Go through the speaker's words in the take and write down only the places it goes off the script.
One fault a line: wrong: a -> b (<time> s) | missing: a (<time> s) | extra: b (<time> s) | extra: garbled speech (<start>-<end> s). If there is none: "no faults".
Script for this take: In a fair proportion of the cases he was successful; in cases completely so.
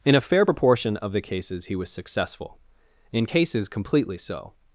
no faults